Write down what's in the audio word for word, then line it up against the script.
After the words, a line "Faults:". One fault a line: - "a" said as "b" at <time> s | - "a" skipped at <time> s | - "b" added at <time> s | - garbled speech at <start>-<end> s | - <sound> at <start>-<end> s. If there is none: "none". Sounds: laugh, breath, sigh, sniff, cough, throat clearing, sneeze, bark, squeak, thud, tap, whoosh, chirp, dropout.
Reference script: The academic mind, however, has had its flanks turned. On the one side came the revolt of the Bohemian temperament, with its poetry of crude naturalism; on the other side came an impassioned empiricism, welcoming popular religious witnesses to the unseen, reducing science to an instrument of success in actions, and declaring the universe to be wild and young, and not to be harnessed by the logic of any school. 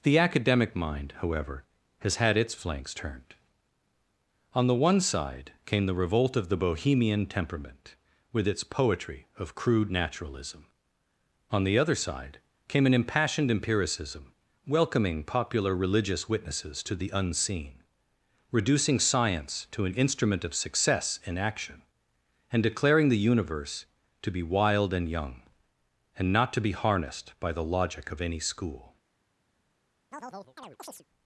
The academic mind, however, has had its flanks turned. On the one side came the revolt of the Bohemian temperament, with its poetry of crude naturalism; on the other side came an impassioned empiricism, welcoming popular religious witnesses to the unseen, reducing science to an instrument of success in action, and declaring the universe to be wild and young, and not to be harnessed by the logic of any school.
Faults:
- "actions" said as "action" at 21.4 s
- chirp at 30.1-31.0 s